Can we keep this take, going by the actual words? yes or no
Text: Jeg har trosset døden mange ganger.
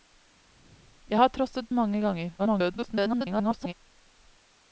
no